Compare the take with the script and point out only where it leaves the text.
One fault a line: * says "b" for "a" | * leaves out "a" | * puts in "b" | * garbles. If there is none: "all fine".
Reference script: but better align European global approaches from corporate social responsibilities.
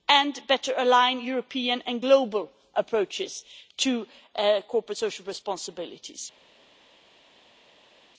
* says "and" for "but"
* puts in "and"
* says "to" for "from"